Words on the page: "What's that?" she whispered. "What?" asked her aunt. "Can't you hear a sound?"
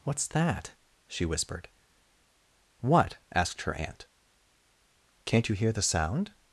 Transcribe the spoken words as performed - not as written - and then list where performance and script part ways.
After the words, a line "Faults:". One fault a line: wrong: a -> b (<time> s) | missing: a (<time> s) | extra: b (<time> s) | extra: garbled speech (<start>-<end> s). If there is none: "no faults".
"What's that?" she whispered. "What?" asked her aunt. "Can't you hear the sound?"
Faults:
wrong: a -> the (5.7 s)